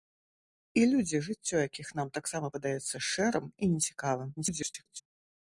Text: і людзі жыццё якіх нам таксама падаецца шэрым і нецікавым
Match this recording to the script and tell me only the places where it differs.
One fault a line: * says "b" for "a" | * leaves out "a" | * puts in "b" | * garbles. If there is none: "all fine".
* garbles